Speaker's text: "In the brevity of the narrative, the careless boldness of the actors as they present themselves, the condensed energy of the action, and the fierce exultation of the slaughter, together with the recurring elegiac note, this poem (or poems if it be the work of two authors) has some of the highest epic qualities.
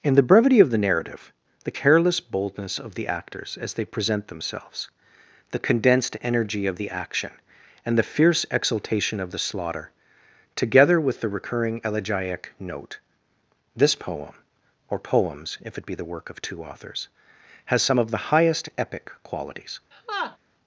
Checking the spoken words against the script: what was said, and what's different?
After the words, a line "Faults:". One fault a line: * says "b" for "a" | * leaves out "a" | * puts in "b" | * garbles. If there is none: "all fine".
"In the brevity of the narrative, the careless boldness of the actors as they present themselves, the condensed energy of the action, and the fierce exultation of the slaughter, together with the recurring elegiac note, this poem (or poems if it be the work of two authors) has some of the highest epic qualities.
Faults:
all fine